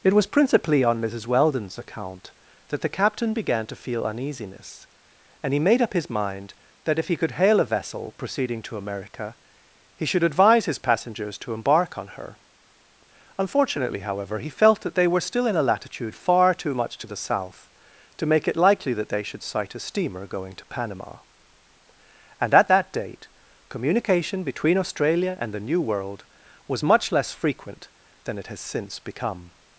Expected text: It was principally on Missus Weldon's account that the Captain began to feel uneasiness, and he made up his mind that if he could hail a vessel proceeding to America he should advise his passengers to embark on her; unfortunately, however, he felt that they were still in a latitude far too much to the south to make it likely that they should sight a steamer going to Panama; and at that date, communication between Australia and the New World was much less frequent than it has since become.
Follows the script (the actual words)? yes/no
yes